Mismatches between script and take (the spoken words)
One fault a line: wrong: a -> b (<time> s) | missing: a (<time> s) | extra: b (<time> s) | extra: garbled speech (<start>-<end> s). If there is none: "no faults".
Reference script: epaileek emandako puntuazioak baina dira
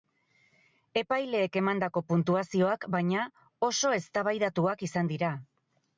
extra: oso eztabaidatuak izan (3.7 s)